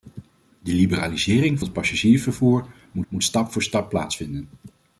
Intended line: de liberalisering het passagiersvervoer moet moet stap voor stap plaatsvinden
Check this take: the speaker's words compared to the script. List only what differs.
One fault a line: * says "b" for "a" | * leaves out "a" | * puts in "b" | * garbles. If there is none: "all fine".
all fine